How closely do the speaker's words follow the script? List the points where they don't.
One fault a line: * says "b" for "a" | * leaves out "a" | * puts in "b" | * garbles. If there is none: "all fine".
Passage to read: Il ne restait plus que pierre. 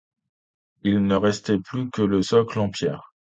* puts in "le socle en"